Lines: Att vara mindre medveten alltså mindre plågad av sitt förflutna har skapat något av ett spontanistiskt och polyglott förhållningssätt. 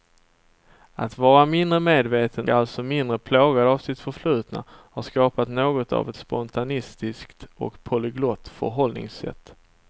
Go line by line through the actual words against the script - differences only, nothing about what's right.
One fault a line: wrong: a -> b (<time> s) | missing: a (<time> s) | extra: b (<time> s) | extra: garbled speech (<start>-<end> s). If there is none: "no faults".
no faults